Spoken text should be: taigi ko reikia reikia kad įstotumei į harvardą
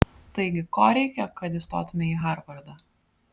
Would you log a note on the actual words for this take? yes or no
yes